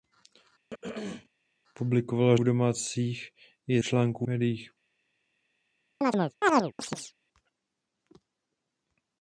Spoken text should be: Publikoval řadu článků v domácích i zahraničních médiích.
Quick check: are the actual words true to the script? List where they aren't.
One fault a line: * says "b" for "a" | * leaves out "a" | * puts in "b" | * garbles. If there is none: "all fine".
* leaves out "řadu článků"
* says "článků" for "zahraničních"